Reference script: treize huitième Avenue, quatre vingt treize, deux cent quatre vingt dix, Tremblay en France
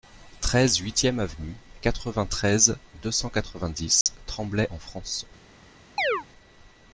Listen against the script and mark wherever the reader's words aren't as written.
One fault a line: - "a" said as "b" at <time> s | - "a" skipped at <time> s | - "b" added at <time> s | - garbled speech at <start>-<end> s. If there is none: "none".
none